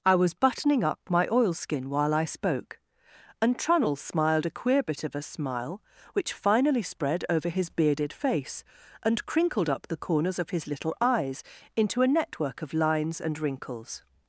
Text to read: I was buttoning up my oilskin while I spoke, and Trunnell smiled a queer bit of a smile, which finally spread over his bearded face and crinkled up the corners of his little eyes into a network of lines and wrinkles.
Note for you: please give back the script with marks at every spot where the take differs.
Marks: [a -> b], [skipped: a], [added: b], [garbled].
I was buttoning up my oilskin while I spoke, and Trunnell smiled a queer bit of a smile, which finally spread over his bearded face and crinkled up the corners of his little eyes into a network of lines and wrinkles.